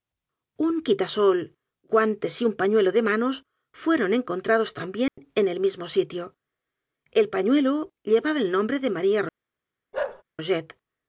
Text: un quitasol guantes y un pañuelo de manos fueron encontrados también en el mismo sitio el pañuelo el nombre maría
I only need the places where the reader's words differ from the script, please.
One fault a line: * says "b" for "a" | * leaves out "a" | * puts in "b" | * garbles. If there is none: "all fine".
* puts in "llevaba"
* puts in "de"